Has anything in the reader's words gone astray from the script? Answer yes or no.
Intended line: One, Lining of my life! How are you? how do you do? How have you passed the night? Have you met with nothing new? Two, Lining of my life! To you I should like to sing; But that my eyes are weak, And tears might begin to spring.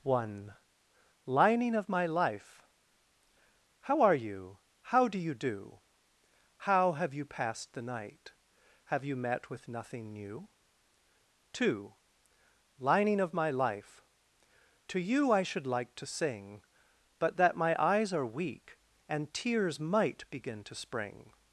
no